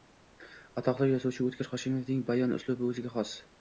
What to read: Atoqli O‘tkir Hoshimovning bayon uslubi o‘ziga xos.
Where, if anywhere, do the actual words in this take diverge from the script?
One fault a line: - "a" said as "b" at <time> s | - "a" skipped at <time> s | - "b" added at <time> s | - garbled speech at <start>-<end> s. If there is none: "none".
- "yozuvchi" added at 1.1 s